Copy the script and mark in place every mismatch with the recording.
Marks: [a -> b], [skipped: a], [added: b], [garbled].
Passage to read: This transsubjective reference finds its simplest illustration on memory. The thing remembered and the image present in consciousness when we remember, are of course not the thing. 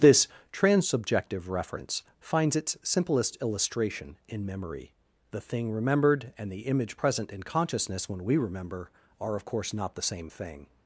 This transsubjective reference finds its simplest illustration [on -> in] memory. The thing remembered and the image present in consciousness when we remember, are of course not the [added: same] thing.